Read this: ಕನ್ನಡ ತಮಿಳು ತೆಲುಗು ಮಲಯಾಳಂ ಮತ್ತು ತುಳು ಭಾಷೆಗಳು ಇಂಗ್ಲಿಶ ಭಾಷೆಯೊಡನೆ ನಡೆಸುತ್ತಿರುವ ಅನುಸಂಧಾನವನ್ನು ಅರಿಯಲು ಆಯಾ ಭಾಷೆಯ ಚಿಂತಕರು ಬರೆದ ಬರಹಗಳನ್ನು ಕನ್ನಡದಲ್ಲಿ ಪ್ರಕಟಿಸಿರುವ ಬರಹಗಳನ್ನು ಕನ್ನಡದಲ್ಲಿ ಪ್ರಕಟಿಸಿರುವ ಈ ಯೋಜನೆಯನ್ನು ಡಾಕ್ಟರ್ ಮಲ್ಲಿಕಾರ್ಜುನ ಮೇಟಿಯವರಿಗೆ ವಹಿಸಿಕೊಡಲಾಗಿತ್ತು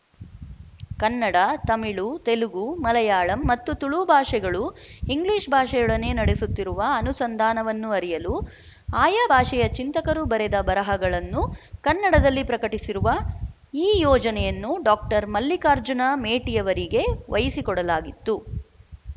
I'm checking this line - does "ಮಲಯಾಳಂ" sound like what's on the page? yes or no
yes